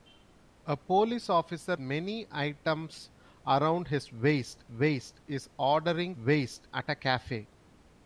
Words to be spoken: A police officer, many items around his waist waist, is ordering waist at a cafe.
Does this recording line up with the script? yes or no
yes